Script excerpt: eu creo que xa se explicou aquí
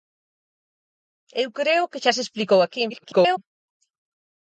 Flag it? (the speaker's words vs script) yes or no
yes